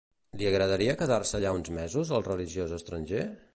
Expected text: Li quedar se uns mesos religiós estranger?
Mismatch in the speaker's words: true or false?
true